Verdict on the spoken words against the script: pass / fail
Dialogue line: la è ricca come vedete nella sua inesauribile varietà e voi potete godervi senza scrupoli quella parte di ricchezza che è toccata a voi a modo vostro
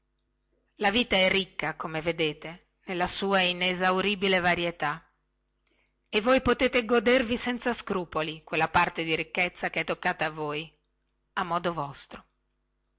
fail